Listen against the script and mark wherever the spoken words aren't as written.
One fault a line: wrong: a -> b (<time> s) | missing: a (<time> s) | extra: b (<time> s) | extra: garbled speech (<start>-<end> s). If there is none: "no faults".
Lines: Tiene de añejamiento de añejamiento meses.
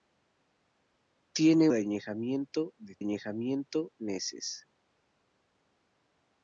no faults